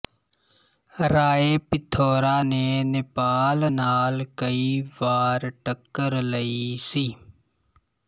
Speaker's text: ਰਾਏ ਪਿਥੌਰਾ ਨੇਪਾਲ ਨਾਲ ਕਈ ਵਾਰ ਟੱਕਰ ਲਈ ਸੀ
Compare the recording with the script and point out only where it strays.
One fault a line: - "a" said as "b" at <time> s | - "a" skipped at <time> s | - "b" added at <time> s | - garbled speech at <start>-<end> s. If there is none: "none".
- "ਨੇ" added at 2.4 s